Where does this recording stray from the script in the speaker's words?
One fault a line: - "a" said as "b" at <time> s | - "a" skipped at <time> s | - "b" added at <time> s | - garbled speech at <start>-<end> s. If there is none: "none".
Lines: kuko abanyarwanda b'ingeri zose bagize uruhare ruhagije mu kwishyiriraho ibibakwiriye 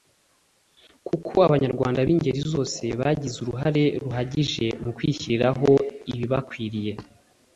none